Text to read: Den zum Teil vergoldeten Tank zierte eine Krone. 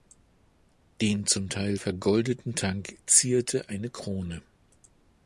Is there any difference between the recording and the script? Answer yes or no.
no